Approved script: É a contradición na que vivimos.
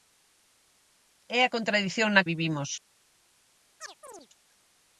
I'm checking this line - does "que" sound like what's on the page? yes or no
no